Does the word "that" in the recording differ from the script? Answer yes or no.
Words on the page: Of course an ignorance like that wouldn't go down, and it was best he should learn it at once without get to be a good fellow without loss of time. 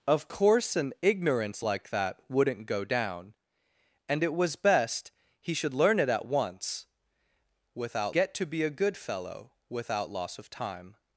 no